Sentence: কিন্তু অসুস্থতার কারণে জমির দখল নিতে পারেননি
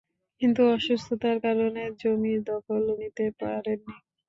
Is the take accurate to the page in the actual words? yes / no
yes